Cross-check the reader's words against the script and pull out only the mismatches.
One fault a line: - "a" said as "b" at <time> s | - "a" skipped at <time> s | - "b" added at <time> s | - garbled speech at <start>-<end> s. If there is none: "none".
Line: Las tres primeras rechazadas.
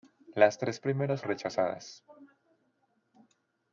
none